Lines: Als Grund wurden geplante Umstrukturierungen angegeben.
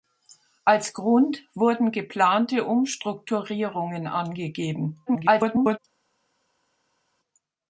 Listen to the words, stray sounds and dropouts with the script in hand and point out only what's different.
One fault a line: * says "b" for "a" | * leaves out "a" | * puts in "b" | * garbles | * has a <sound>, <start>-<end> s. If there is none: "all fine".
* garbles